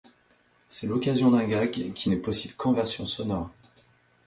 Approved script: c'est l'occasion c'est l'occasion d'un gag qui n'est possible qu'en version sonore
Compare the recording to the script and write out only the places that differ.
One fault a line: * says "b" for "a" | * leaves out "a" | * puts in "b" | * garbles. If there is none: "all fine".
* leaves out "c'est l'occasion"